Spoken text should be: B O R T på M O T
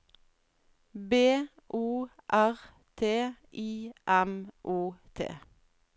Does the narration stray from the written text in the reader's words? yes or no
yes